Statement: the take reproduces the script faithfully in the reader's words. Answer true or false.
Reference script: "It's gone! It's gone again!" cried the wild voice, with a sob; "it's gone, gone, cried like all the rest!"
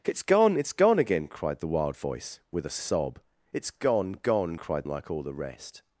true